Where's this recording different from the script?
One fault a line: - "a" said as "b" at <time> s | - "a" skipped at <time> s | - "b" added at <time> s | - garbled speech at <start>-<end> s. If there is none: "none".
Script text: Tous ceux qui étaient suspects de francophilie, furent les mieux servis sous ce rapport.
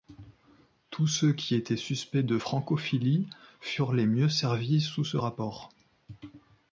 none